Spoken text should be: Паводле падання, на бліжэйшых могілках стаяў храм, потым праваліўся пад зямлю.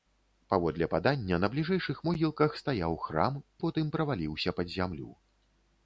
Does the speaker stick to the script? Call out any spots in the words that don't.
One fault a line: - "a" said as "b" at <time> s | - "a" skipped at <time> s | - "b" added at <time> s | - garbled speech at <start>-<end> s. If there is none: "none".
none